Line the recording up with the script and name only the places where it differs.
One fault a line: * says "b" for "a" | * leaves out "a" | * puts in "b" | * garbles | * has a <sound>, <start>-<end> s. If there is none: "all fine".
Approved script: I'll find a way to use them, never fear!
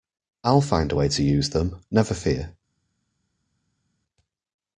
all fine